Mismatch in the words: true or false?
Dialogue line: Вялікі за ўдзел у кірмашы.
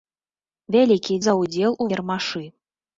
false